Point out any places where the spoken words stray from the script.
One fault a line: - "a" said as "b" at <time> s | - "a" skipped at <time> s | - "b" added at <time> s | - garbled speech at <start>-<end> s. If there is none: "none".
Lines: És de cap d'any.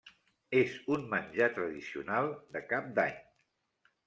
- "un menjar tradicional" added at 0.9 s